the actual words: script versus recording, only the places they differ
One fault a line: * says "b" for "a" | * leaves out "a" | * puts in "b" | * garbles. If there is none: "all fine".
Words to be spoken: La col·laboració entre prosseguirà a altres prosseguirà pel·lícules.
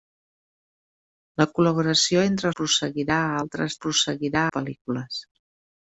all fine